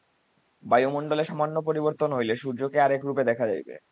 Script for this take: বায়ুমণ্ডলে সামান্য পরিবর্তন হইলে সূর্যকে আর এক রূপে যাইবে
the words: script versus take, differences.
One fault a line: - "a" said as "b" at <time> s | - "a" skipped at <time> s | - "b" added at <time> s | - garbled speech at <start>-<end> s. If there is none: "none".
- "দেখা" added at 3.2 s